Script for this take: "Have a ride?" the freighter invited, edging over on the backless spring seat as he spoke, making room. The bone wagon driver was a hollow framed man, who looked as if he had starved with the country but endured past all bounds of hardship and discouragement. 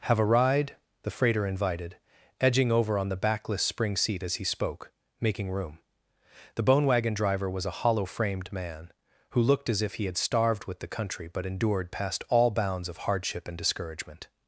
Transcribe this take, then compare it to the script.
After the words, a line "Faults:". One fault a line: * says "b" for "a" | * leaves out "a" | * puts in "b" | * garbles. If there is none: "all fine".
"Have a ride?" the freighter invited, edging over on the backless spring seat as he spoke, making room. The bone wagon driver was a hollow framed man, who looked as if he had starved with the country but endured past all bounds of hardship and discouragement.
Faults:
all fine